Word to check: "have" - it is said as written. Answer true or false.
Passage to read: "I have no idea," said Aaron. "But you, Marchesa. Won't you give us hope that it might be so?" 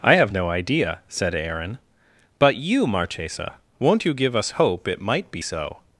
true